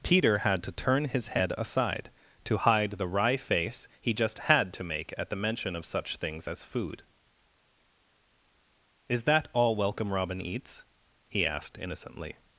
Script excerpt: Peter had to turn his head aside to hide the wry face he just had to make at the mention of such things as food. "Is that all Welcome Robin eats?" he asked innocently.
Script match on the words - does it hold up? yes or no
yes